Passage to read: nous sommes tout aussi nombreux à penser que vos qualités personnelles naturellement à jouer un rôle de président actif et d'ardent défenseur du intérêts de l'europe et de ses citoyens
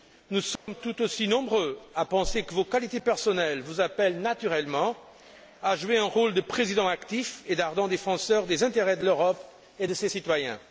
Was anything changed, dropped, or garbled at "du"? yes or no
yes